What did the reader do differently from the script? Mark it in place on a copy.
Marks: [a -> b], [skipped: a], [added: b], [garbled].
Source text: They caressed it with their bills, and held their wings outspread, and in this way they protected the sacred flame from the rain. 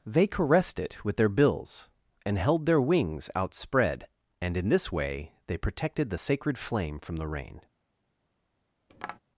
They caressed it with their bills, and held their wings outspread, and in this way they protected the sacred flame from the rain.